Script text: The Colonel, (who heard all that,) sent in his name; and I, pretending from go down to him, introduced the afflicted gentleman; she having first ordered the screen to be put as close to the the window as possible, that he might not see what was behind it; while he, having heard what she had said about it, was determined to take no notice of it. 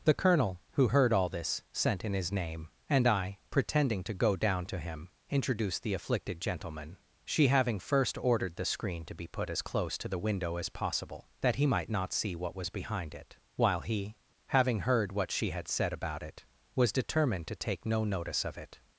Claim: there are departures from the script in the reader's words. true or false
true